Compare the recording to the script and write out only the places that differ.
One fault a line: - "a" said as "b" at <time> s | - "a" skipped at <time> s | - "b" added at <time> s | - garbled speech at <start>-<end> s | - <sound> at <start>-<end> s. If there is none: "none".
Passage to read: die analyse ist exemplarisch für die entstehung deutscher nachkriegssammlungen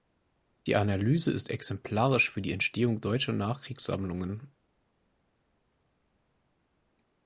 none